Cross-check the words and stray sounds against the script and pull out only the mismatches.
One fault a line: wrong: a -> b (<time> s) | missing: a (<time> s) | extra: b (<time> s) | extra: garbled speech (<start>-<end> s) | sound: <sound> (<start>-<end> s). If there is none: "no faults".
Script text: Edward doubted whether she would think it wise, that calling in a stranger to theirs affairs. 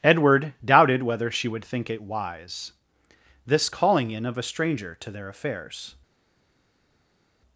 wrong: that -> this (3.5 s)
extra: of (4.3 s)
wrong: theirs -> their (5.1 s)